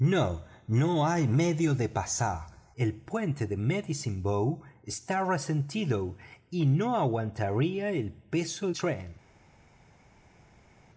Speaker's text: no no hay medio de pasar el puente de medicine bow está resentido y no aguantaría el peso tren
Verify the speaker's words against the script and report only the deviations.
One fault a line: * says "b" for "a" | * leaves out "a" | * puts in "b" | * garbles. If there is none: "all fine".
all fine